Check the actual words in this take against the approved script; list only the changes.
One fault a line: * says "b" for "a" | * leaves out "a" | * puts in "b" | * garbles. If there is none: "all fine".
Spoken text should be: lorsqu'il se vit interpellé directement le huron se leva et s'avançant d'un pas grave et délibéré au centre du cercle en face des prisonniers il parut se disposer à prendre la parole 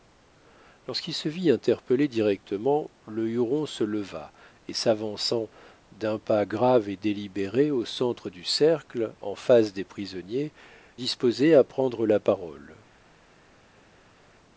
* leaves out "il parut se"